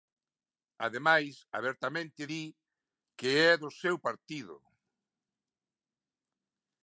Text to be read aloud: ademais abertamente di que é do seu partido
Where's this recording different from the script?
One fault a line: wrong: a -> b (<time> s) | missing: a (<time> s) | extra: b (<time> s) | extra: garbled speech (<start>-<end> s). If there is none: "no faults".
no faults